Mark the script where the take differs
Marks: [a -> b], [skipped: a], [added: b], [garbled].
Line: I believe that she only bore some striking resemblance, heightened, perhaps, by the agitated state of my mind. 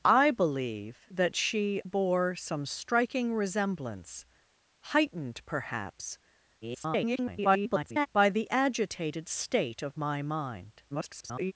I believe that she [skipped: only] bore some striking resemblance, heightened, perhaps, [garbled] by the agitated state of my mind. [garbled]